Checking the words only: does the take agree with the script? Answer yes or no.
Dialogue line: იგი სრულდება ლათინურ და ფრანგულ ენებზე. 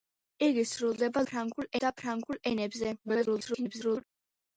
no